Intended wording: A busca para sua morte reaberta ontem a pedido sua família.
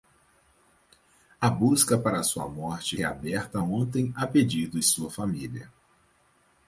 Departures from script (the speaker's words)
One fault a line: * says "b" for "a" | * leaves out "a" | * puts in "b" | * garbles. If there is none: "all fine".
all fine